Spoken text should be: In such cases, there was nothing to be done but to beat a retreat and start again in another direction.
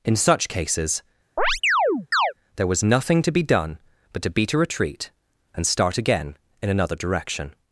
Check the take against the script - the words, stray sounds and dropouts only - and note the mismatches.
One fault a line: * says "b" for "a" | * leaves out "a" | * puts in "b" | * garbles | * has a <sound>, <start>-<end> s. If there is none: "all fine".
* has a chirp, 1.4-2.3 s